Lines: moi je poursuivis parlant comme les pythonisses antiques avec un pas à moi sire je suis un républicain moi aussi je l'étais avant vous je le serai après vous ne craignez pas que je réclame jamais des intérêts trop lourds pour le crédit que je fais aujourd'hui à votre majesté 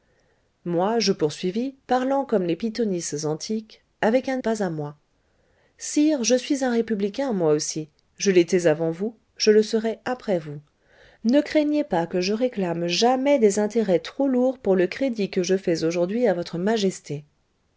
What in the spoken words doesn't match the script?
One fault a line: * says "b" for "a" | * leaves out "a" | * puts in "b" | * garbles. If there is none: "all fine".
all fine